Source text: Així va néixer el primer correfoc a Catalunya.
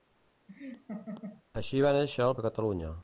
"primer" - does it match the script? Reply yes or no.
no